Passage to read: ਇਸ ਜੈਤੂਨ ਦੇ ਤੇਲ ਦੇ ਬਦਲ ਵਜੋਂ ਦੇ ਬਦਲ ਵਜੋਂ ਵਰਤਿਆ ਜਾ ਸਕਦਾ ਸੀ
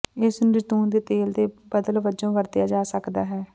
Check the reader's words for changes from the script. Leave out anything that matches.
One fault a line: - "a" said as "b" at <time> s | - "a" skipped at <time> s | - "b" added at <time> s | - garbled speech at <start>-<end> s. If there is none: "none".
- "ਨੂੰ" added at 0.4 s
- "ਦੇ ਬਦਲ ਵਜੋਂ" skipped at 2.3 s
- "ਸੀ" said as "ਹੈ" at 3.3 s